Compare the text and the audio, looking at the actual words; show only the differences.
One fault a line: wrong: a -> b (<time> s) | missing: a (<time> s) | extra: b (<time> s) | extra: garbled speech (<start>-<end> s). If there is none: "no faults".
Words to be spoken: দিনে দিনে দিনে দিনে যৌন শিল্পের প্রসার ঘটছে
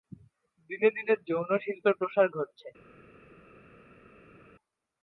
missing: দিনে দিনে (1.1 s)